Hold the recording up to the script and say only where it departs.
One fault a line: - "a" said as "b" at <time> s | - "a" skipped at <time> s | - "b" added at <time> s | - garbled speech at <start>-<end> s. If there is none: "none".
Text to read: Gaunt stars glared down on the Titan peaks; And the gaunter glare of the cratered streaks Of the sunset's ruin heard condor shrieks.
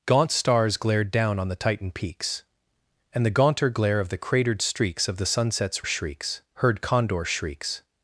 - "ruin" said as "shrieks" at 5.8 s